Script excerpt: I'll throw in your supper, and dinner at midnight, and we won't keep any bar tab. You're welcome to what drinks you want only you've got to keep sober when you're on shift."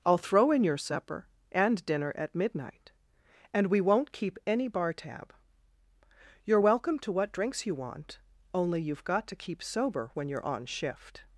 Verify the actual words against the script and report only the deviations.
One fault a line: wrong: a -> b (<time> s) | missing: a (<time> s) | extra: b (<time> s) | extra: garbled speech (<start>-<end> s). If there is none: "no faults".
no faults